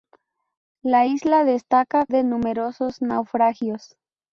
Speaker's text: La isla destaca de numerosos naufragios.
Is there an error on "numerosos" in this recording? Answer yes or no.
no